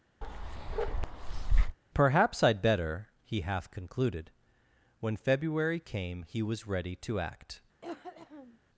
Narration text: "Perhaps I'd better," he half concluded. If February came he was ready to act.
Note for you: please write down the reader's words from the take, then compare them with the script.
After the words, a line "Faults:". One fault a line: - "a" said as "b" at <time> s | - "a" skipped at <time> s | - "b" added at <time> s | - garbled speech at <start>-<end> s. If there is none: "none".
"Perhaps I'd better," he half concluded. When February came he was ready to act.
Faults:
- "If" said as "When" at 5.0 s